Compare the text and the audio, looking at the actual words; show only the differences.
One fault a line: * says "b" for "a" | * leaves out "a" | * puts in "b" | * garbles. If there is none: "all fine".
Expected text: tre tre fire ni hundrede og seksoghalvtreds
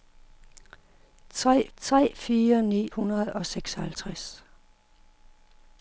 all fine